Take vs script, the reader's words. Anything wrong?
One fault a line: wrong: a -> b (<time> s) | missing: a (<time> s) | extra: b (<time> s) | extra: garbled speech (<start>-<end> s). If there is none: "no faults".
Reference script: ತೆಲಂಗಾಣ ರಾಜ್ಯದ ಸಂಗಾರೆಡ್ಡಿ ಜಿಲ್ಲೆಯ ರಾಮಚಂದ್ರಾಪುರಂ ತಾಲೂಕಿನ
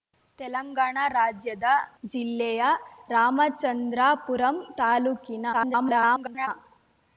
missing: ಸಂಗಾರೆಡ್ಡಿ (1.7 s)
extra: garbled speech (5.5-6.5 s)